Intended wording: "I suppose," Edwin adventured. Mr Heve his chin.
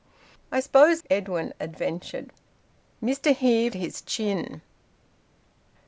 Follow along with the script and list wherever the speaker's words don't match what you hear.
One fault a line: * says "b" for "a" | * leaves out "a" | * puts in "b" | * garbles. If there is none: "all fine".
all fine